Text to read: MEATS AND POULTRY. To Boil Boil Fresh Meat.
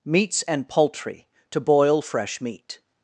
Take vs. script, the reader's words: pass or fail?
fail